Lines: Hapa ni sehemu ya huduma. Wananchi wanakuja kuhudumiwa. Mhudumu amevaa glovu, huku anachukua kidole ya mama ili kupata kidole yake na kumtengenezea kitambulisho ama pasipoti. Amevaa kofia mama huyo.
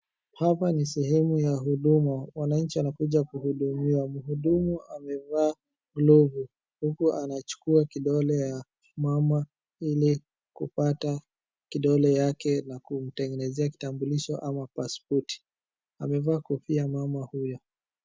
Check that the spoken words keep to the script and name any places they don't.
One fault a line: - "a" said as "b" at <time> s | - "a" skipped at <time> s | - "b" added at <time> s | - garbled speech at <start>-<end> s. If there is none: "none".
none